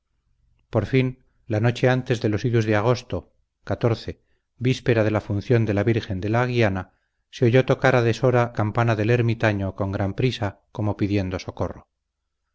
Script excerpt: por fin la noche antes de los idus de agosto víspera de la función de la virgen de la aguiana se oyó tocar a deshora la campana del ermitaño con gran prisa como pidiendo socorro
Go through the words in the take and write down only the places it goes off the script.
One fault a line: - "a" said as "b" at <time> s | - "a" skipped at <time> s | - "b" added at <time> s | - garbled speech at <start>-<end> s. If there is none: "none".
- "la" skipped at 8.5 s